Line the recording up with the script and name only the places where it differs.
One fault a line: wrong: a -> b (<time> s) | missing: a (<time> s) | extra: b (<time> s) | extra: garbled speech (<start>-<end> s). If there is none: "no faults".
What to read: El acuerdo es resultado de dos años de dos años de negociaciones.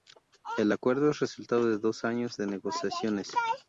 missing: dos años de (2.5 s)